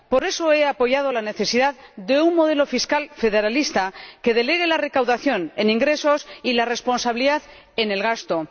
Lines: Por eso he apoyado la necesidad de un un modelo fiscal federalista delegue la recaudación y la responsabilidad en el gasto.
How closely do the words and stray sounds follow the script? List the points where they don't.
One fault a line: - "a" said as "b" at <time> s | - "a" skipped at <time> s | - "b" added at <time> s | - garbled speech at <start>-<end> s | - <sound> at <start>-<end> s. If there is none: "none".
- "un" skipped at 2.3 s
- "que" added at 4.2 s
- "en ingresos" added at 5.5 s